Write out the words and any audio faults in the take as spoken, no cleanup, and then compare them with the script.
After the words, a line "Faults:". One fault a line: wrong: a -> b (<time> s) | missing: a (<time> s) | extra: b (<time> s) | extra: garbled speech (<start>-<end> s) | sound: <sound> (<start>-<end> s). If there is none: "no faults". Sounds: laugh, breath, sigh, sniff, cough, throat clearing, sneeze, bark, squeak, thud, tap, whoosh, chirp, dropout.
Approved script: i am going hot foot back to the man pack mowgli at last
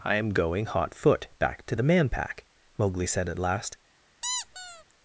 i am going hot foot back to the man pack mowgli said at last
Faults:
extra: said (3.1 s)
sound: squeak (4.2-4.8 s)